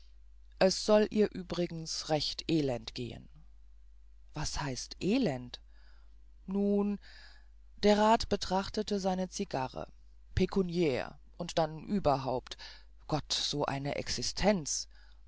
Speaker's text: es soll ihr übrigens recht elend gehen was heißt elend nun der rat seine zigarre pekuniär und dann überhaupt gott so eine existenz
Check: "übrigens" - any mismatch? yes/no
no